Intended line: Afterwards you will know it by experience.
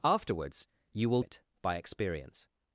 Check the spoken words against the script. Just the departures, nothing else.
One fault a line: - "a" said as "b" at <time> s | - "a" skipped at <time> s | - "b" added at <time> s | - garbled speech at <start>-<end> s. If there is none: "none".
- "know" skipped at 1.2 s